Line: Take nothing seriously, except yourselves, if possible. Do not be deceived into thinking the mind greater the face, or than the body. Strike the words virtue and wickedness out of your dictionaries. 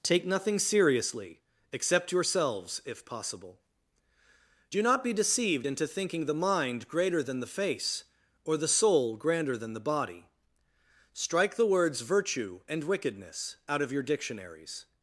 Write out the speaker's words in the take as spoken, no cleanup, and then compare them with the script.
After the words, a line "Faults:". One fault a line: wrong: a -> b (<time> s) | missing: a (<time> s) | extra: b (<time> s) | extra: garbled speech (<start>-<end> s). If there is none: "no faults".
Take nothing seriously, except yourselves, if possible. Do not be deceived into thinking the mind greater than the face, or the soul grander than the body. Strike the words virtue and wickedness out of your dictionaries.
Faults:
extra: than (7.2 s)
extra: the soul grander (8.5 s)